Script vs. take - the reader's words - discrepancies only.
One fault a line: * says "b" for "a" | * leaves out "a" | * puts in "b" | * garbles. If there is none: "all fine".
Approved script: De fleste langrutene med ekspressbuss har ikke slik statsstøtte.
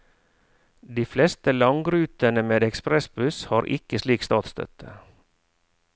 all fine